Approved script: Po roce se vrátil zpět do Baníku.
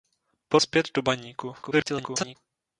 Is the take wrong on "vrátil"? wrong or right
wrong